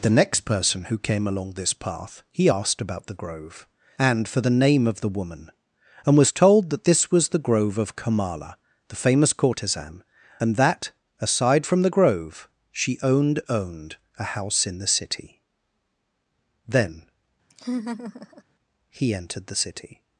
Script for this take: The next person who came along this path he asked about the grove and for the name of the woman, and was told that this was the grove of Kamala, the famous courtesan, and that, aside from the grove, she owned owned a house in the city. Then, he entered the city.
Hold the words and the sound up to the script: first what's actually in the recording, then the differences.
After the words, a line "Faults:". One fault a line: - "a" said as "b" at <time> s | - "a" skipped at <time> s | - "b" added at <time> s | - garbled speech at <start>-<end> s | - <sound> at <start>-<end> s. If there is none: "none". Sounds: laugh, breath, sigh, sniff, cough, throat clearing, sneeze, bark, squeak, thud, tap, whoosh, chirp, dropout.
The next person who came along this path he asked about the grove and for the name of the woman, and was told that this was the grove of Kamala, the famous courtesan, and that, aside from the grove, she owned owned a house in the city. Then, he entered the city.
Faults:
- laugh at 17.5-18.4 s